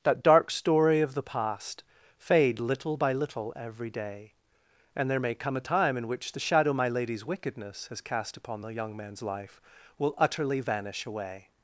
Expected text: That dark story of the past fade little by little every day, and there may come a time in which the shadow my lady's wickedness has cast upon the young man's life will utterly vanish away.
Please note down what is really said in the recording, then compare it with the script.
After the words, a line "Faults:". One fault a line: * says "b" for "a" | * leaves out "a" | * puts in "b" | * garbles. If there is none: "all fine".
That dark story of the past fade little by little every day, and there may come a time in which the shadow my lady's wickedness has cast upon the young man's life will utterly vanish away.
Faults:
all fine